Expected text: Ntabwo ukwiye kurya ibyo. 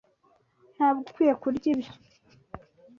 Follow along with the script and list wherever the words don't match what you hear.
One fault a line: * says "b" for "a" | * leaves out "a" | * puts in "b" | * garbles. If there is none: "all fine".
all fine